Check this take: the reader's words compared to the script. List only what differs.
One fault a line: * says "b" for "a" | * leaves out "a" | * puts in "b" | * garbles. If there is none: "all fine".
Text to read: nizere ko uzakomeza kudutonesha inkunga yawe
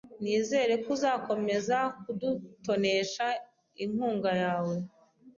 all fine